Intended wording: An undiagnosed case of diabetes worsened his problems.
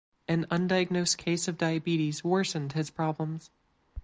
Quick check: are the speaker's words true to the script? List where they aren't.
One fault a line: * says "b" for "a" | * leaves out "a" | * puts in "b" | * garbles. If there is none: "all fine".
all fine